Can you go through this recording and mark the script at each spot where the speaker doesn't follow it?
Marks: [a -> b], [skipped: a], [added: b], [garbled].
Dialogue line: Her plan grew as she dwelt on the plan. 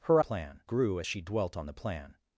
Her plan grew as she dwelt on the plan.